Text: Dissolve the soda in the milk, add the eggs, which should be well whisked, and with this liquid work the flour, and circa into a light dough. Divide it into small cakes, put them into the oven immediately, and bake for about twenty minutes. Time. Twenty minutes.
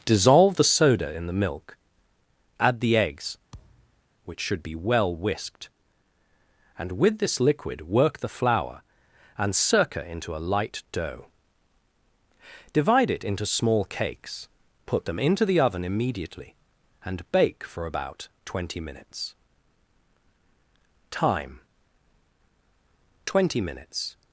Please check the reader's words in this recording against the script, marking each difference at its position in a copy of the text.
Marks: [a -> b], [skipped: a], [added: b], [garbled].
Dissolve the soda in the milk, add the eggs, which should be well whisked, and with this liquid work the flour, and circa into a light dough. Divide it into small cakes, put them into the oven immediately, and bake for about twenty minutes. Time. Twenty minutes.